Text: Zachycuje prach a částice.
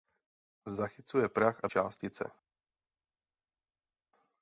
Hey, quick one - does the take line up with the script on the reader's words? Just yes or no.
yes